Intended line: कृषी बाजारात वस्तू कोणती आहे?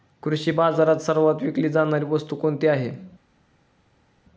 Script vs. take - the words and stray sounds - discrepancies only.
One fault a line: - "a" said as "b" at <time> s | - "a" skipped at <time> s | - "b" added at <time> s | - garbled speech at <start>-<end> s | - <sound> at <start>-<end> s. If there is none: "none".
- "सर्वात विकली जाणारी" added at 1.0 s